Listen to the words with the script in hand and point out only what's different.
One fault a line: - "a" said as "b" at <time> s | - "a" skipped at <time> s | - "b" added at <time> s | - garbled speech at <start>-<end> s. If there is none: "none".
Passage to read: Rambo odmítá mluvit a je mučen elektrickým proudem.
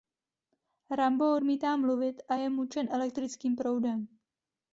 none